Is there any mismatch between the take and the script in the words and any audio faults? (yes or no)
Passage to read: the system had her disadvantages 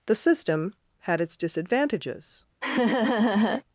yes